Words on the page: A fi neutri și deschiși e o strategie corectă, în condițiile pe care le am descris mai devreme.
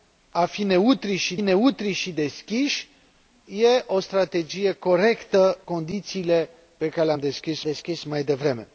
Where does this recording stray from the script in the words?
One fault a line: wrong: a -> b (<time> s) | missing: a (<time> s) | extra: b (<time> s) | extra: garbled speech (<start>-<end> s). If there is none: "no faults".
extra: neutri și (1.4 s)
missing: în (5.6 s)
extra: descris (7.6 s)